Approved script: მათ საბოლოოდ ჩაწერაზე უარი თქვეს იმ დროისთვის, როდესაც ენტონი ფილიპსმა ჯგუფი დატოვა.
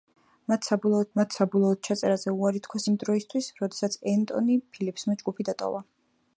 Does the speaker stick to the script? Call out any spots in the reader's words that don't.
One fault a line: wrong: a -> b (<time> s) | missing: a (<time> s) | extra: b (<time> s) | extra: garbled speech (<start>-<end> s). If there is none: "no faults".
extra: მათ საბოლოოდ (1.2 s)